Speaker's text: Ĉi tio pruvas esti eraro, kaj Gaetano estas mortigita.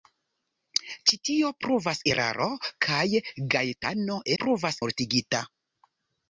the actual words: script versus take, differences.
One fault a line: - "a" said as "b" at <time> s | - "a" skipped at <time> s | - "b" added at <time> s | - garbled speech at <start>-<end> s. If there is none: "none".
- "esti" skipped at 2.0 s
- "estas" said as "pruvas" at 4.4 s